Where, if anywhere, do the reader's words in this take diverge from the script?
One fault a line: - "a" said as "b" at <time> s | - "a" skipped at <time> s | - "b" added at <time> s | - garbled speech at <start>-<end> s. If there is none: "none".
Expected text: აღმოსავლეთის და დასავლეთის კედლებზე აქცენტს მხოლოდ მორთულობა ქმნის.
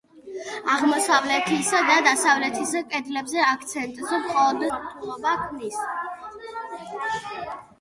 none